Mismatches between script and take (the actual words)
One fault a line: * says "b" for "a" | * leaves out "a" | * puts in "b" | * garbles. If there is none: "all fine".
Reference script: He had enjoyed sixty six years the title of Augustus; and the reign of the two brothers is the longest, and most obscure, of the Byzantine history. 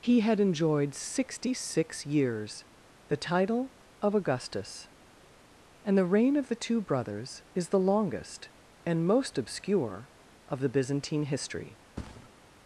all fine